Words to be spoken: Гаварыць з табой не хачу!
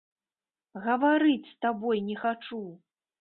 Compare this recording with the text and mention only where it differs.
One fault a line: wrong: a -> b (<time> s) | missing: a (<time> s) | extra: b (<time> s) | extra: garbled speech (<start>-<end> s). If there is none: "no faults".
no faults